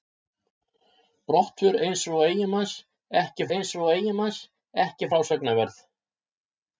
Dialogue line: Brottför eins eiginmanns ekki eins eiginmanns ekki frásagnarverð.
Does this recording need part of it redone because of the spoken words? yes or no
no